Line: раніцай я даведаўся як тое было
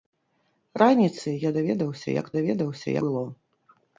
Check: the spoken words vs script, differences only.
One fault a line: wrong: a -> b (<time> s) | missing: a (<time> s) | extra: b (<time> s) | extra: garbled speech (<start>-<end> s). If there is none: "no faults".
wrong: тое -> даведаўся (2.4 s)